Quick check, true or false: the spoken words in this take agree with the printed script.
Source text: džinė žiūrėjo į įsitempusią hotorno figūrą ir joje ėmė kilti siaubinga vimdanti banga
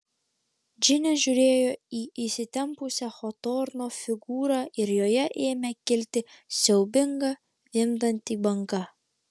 true